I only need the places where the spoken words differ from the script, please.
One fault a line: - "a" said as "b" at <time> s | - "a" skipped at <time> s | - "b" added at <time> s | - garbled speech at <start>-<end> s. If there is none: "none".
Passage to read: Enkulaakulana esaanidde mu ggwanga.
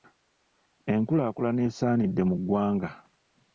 none